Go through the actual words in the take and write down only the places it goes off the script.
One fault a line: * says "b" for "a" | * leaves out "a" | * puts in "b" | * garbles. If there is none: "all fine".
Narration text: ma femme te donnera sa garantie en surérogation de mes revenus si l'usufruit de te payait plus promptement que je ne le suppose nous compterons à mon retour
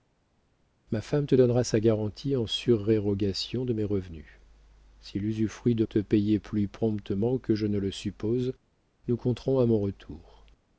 all fine